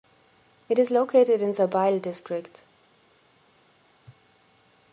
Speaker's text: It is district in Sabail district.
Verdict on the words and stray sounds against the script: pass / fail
fail